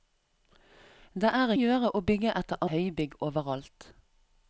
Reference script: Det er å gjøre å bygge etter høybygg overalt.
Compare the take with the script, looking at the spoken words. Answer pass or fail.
pass